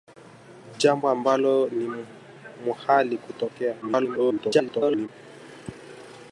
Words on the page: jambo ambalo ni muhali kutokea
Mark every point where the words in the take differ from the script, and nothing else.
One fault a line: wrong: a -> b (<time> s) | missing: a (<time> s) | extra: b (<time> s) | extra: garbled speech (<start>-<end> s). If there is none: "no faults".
extra: garbled speech (3.8-5.1 s)